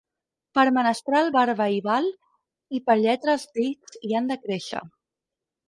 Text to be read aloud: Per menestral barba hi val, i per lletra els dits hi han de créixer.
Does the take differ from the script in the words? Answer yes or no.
no